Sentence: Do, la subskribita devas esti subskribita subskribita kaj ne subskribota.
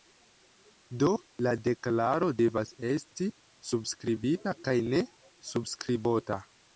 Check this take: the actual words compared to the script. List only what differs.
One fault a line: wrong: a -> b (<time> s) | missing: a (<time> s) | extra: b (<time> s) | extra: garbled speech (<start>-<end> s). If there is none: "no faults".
wrong: subskribita -> deklaro (1.7 s)
missing: subskribita (4.6 s)